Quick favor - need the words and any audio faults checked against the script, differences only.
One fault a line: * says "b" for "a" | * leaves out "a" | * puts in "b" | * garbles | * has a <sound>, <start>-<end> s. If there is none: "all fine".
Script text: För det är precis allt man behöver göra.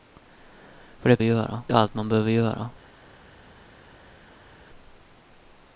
* says "göra" for "precis"